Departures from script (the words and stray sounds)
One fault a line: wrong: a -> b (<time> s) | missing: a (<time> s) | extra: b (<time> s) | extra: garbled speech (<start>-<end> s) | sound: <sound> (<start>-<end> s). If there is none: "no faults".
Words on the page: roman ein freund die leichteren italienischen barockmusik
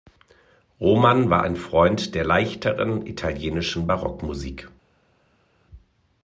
extra: war (1.3 s)
wrong: die -> der (2.1 s)